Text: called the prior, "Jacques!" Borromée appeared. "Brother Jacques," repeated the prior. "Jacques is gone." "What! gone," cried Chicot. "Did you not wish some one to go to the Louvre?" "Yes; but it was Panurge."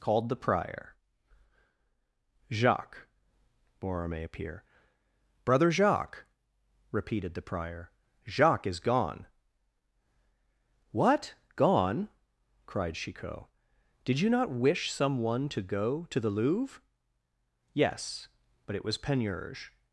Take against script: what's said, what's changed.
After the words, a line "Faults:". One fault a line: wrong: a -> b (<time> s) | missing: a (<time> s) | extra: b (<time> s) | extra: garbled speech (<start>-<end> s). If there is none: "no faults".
called the prior, "Jacques!" Borromée appear. "Brother Jacques," repeated the prior. "Jacques is gone." "What! gone," cried Chicot. "Did you not wish some one to go to the Louvre?" "Yes; but it was Panurge."
Faults:
wrong: appeared -> appear (4.2 s)